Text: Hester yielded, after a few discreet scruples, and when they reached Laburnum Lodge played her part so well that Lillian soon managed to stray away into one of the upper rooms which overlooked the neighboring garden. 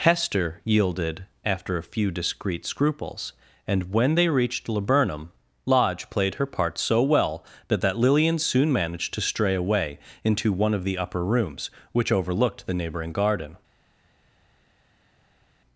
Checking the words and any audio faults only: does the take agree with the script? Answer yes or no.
no